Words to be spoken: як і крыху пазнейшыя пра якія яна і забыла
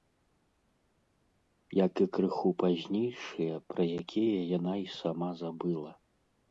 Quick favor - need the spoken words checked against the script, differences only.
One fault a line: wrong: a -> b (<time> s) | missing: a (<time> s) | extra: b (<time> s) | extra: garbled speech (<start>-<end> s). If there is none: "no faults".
extra: сама (5.0 s)